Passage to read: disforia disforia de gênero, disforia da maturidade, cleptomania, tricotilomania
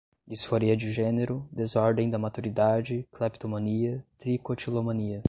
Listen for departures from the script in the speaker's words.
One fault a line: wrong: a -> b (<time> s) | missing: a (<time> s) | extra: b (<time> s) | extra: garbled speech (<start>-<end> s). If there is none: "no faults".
missing: disforia (0.8 s)
wrong: disforia -> desordem (1.5 s)